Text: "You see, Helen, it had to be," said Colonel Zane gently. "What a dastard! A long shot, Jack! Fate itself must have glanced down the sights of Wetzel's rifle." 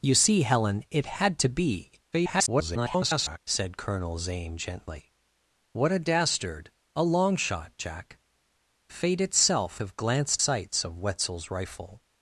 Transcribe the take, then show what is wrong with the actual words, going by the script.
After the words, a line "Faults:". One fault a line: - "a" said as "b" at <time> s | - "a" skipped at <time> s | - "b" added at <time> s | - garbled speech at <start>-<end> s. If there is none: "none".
"You see, Helen, it had to be," [garbled] said Colonel Zane gently. "What a dastard! A long shot, Jack! Fate itself have glanced sights of Wetzel's rifle."
Faults:
- garbled speech at 2.1-3.4 s
- "must" skipped at 9.8 s
- "down the" skipped at 10.4 s